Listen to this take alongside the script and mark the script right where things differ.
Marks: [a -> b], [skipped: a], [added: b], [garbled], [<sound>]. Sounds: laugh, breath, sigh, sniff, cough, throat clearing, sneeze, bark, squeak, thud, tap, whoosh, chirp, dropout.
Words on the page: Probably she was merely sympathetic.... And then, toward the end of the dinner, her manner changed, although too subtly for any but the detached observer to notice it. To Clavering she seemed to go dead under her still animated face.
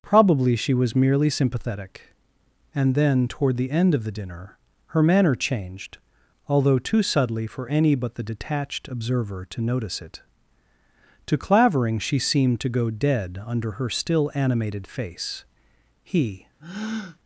Probably she was merely sympathetic.... And then, toward the end of the dinner, her manner changed, although too subtly for any but the detached observer to notice it. To Clavering she seemed to go dead under her still animated face. [added: He] [breath]